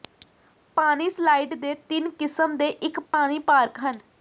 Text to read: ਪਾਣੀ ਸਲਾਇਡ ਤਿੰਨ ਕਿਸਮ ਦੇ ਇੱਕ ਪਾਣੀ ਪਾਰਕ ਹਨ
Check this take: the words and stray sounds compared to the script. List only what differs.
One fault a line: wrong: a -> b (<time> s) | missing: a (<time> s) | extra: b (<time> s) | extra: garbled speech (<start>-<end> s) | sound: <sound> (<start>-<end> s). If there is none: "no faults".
extra: ਦੇ (1.6 s)
sound: dropout (3.1-3.1 s)